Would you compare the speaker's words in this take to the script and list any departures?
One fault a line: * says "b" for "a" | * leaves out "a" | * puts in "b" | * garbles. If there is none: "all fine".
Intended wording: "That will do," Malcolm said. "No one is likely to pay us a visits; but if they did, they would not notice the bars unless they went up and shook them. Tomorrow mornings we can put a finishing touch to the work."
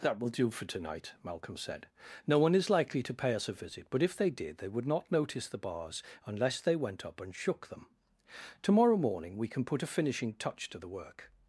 * puts in "for tonight"
* says "visit" for "visits"
* says "morning" for "mornings"